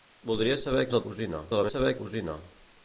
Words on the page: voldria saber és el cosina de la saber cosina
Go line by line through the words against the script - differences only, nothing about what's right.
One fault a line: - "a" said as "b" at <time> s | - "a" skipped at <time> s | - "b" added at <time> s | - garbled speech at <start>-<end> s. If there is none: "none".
none